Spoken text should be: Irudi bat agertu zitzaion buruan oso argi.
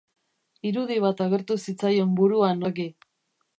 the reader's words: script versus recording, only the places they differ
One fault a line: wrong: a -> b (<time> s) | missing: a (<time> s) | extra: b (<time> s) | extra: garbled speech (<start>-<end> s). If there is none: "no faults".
missing: oso (2.6 s)